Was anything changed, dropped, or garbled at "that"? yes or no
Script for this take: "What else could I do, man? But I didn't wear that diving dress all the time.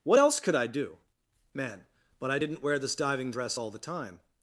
yes